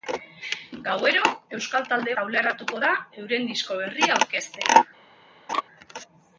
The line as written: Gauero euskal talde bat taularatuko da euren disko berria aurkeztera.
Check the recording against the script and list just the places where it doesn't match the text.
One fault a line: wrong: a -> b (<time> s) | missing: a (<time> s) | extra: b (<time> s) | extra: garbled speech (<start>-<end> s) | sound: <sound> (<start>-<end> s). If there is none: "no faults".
missing: bat (2.1 s)
sound: laugh (5.5-5.6 s)